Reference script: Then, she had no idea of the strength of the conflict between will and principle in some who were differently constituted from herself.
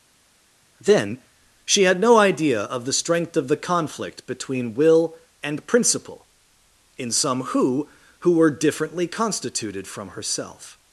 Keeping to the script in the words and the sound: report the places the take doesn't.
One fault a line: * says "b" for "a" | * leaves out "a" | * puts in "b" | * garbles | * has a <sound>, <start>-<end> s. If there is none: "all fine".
* puts in "who"